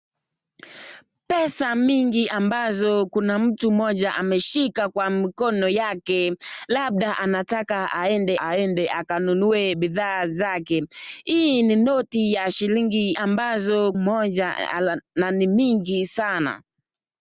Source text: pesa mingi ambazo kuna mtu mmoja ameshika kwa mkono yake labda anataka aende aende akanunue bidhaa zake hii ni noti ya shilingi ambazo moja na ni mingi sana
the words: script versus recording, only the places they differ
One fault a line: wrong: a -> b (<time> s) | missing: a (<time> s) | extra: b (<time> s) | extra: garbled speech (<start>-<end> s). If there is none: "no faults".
no faults